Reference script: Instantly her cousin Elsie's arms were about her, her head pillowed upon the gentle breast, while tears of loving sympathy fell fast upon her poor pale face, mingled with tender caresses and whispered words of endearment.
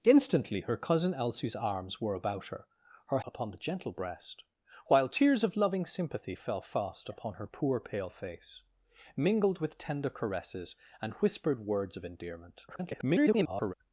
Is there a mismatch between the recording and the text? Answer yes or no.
yes